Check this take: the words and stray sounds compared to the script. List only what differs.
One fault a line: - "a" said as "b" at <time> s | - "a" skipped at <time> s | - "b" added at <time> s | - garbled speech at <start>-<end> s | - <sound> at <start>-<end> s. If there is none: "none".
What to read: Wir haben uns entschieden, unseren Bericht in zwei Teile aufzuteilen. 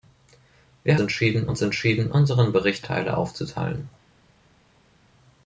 - "haben" said as "entschieden" at 1.0 s
- "in zwei" skipped at 2.9 s